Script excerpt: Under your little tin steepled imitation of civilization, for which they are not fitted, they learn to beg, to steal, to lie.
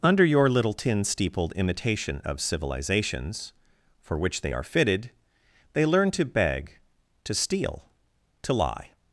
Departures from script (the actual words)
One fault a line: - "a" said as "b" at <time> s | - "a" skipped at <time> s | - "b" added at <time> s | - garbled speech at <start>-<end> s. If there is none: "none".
- "civilization" said as "civilizations" at 2.4 s
- "not" skipped at 4.6 s